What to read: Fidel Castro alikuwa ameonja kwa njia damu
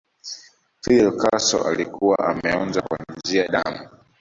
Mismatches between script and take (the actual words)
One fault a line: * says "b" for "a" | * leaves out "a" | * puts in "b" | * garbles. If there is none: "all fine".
all fine